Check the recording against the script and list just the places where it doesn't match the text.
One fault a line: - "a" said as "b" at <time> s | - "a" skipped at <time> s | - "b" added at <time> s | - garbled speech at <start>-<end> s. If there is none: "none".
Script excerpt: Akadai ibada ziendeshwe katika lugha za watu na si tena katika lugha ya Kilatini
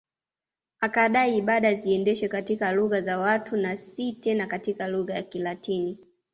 none